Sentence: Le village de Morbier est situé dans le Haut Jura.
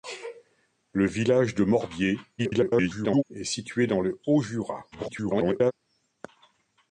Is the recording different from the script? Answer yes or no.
yes